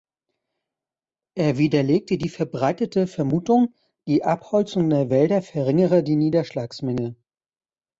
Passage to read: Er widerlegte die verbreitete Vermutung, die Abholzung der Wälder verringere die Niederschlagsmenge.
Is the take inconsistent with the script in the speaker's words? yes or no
no